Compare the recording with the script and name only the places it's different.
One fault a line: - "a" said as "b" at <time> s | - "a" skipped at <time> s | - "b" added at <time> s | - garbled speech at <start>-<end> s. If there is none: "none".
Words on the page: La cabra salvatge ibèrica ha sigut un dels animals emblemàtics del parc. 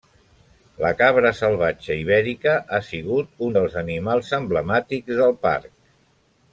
none